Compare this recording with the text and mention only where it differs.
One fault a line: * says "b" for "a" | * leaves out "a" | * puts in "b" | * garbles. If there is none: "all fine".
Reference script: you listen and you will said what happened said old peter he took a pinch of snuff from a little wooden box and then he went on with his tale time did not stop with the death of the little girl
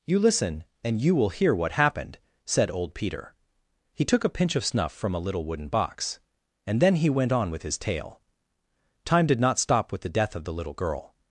* says "hear" for "said"